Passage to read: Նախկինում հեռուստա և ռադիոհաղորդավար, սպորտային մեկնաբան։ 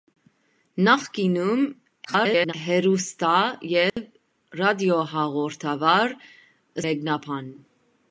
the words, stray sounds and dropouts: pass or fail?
fail